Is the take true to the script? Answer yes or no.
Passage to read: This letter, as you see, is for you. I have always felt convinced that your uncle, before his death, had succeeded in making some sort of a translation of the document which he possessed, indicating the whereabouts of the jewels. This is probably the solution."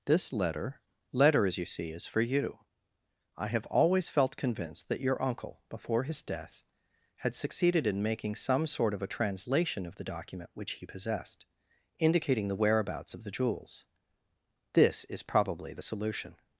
no